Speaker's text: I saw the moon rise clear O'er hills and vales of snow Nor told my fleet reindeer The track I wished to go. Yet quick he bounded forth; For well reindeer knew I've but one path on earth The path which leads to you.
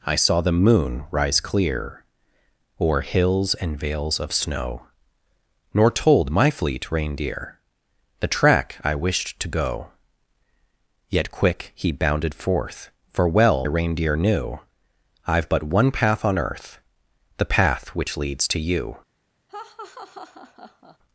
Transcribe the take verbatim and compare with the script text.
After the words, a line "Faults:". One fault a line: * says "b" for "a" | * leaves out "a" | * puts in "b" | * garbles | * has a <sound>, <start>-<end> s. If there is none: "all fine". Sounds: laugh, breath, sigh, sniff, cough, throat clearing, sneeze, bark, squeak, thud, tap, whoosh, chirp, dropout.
I saw the moon rise clear O'er hills and vales of snow Nor told my fleet reindeer The track I wished to go. Yet quick he bounded forth; For well reindeer knew I've but one path on earth The path which leads to you.
Faults:
* has a laugh, 19.5-21.0 s